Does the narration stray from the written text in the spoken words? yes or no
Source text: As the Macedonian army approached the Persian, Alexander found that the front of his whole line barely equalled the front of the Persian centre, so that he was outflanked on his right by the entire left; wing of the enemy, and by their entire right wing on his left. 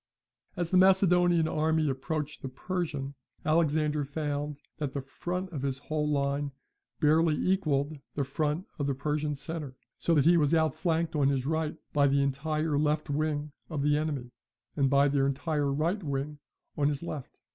no